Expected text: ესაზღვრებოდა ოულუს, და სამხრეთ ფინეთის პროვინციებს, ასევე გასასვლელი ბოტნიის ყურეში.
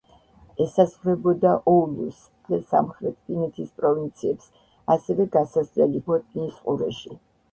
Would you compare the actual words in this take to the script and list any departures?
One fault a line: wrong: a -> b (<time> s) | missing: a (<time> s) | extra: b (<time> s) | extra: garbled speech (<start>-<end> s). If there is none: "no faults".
no faults